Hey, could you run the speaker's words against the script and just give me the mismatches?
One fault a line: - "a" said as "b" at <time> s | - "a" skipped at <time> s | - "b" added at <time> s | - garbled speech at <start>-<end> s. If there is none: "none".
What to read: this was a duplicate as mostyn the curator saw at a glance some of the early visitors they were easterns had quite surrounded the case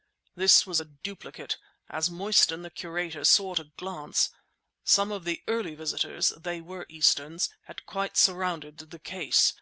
none